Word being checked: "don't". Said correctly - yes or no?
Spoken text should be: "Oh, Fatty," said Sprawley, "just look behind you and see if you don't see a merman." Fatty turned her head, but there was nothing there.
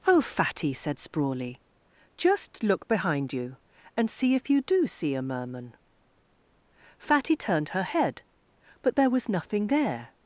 no